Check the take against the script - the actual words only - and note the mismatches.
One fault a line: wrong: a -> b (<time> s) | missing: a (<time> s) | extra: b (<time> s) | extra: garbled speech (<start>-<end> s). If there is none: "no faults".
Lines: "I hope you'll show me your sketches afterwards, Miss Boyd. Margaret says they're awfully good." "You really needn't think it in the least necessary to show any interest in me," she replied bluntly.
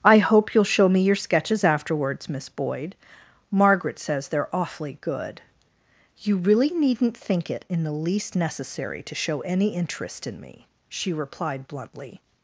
no faults